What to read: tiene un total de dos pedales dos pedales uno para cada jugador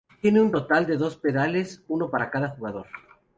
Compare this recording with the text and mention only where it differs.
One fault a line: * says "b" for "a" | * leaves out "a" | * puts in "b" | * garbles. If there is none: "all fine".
* leaves out "dos pedales"